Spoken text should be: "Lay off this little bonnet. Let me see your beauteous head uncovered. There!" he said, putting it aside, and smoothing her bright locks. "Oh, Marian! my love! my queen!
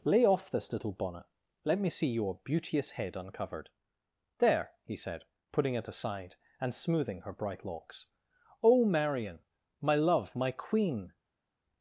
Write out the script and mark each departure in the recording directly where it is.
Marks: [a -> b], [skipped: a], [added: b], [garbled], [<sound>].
"Lay off this little bonnet. Let me see your beauteous head uncovered. There!" he said, putting it aside, and smoothing her bright locks. "Oh, Marian! my love! my queen!